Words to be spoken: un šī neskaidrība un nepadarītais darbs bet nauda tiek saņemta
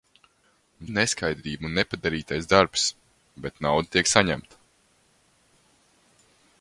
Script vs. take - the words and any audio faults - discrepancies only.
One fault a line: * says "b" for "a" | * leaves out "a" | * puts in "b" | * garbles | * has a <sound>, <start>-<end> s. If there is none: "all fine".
* leaves out "šī"